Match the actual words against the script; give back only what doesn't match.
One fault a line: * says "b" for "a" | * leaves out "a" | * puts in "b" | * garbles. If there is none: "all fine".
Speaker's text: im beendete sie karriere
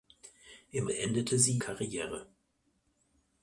all fine